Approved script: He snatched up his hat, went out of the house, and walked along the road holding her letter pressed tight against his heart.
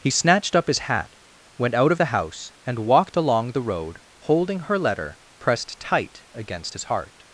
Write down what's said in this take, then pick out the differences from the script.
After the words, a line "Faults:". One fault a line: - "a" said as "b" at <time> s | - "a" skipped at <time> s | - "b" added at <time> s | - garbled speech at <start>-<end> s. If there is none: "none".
He snatched up his hat, went out of the house, and walked along the road holding her letter pressed tight against his heart.
Faults:
none